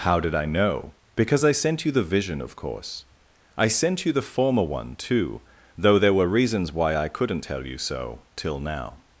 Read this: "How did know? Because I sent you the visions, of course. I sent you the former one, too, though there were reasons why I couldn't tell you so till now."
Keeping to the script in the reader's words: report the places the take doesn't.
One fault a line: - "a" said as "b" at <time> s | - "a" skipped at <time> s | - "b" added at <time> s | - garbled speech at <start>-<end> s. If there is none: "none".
- "I" added at 0.3 s
- "visions" said as "vision" at 2.0 s